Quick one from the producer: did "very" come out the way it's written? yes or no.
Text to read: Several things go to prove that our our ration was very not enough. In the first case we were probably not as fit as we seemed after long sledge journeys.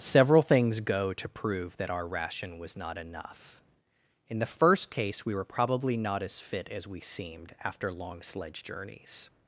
no